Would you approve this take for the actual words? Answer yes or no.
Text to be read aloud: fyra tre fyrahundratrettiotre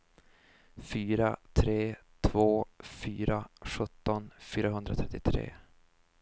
no